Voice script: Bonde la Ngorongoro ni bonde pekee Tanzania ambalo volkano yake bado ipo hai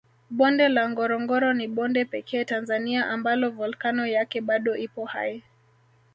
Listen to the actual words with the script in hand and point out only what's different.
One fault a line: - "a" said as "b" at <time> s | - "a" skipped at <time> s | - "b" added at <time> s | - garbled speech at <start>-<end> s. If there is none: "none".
none